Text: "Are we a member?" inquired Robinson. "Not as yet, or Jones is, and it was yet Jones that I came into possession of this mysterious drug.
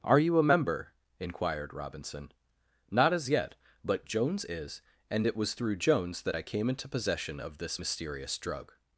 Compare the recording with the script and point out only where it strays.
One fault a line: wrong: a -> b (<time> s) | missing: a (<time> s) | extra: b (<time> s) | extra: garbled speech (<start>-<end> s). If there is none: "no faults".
wrong: we -> you (0.2 s)
wrong: or -> but (3.8 s)
wrong: yet -> through (5.5 s)